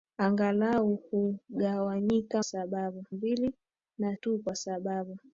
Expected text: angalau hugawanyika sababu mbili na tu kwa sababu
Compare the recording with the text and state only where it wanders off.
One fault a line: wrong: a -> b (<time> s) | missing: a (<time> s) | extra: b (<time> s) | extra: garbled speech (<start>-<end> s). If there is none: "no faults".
no faults